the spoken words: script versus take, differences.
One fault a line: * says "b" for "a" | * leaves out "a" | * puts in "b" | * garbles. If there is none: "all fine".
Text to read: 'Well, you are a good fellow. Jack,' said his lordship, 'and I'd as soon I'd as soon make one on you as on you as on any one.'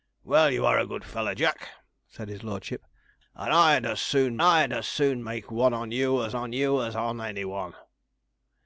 all fine